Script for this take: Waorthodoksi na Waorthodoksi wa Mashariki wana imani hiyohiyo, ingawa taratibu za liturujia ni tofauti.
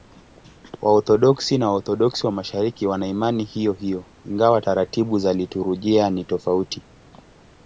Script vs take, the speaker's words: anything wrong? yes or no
no